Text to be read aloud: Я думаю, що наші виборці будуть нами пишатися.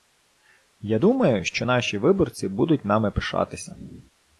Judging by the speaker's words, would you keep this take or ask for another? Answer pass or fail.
pass